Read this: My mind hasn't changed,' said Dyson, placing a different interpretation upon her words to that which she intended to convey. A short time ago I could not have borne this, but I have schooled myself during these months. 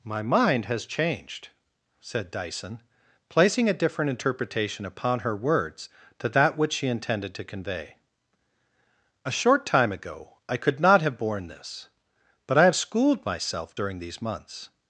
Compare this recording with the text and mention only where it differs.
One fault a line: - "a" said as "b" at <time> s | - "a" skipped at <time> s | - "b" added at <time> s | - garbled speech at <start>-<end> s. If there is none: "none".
- "hasn't" said as "has" at 0.7 s